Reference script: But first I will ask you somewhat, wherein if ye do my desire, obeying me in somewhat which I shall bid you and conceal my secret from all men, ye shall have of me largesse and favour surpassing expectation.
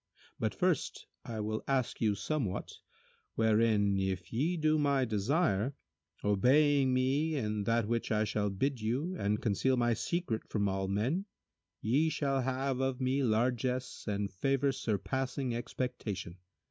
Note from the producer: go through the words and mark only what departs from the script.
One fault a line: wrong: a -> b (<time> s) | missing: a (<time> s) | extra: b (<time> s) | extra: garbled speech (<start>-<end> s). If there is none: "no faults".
wrong: somewhat -> that (7.7 s)